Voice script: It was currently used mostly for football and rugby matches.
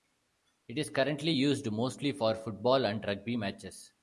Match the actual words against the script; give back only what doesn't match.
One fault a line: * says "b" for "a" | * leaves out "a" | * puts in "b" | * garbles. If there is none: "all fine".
* says "is" for "was"